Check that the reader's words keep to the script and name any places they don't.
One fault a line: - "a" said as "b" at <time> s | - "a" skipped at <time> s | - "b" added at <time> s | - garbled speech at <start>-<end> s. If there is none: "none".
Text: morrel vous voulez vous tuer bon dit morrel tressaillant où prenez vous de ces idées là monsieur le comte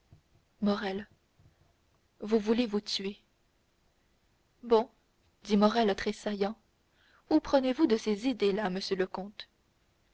none